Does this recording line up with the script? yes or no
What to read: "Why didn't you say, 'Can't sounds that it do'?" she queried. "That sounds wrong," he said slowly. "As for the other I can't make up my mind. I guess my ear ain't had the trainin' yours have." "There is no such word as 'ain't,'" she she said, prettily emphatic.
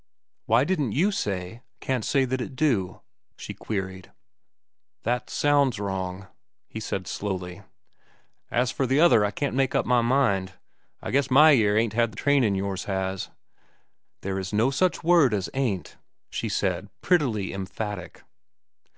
no